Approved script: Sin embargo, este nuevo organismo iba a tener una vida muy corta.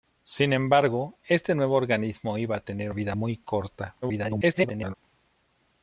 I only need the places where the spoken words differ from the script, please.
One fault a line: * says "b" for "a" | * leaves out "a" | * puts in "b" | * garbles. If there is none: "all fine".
* leaves out "una"
* garbles